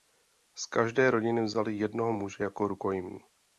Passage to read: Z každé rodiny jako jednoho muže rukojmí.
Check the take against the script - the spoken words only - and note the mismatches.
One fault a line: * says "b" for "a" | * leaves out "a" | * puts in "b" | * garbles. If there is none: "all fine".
* says "vzali" for "jako"
* puts in "jako"